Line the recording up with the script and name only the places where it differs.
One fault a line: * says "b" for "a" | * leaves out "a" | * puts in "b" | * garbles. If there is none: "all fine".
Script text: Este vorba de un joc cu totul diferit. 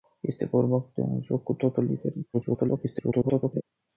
* garbles